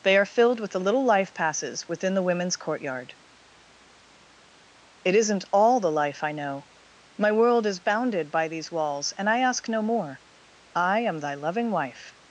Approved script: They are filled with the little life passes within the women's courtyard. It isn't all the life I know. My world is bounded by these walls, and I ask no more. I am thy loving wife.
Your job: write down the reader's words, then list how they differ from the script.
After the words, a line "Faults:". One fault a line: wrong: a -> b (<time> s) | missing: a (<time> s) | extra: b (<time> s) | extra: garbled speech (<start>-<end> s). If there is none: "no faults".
They are filled with the little life passes within the women's courtyard. It isn't all the life I know. My world is bounded by these walls, and I ask no more. I am thy loving wife.
Faults:
no faults